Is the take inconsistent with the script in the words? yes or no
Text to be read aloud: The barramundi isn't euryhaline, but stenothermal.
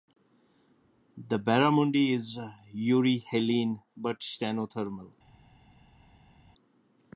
yes